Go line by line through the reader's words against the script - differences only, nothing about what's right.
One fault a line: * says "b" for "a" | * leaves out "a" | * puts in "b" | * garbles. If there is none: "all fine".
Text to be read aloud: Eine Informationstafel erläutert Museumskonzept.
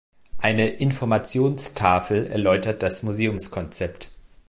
* puts in "das"